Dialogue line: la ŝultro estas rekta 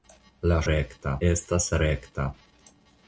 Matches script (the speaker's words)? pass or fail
fail